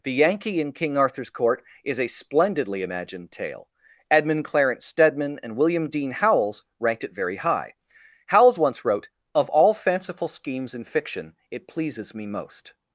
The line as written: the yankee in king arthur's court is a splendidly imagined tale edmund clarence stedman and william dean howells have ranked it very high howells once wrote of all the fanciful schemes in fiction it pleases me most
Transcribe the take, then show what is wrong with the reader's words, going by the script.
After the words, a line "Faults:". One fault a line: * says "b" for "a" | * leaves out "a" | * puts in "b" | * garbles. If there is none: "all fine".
the yankee in king arthur's court is a splendidly imagined tale edmund clarence stedman and william dean howells ranked it very high howells once wrote of all fanciful schemes in fiction it pleases me most
Faults:
* leaves out "have"
* leaves out "the"